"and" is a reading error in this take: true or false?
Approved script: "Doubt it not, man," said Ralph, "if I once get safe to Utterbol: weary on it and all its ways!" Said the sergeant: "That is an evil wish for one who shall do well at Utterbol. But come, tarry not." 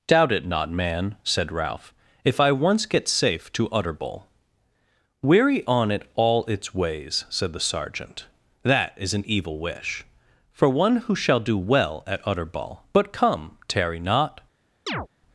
true